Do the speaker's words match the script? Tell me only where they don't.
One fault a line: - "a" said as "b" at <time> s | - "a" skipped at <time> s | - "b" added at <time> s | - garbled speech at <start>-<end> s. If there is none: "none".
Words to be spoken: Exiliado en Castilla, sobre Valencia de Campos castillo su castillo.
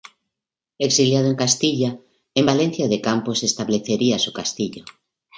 - "sobre" said as "en" at 2.3 s
- "castillo" said as "establecería" at 3.4 s